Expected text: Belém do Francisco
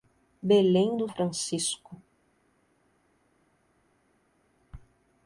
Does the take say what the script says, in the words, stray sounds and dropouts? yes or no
yes